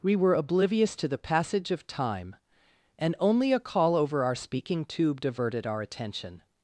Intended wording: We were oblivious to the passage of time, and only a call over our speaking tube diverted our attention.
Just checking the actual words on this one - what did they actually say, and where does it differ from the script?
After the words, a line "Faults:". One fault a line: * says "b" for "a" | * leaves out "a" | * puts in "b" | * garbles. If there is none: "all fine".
We were oblivious to the passage of time, and only a call over our speaking tube diverted our attention.
Faults:
all fine